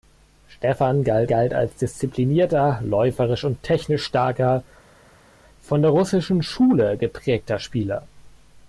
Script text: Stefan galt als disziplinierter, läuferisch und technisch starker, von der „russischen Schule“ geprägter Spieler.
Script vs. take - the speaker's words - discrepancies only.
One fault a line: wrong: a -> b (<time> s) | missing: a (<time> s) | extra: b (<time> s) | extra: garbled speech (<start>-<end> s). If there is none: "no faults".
extra: galt (1.3 s)